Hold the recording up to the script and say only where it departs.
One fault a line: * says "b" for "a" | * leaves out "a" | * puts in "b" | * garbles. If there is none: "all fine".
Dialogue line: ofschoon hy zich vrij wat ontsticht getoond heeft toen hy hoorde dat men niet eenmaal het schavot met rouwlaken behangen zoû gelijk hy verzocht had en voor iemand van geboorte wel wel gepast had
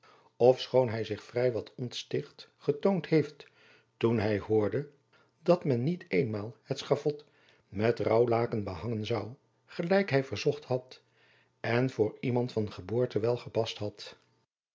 * leaves out "wel"